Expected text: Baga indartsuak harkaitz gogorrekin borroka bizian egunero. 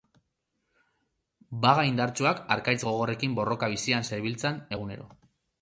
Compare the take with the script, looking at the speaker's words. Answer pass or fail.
fail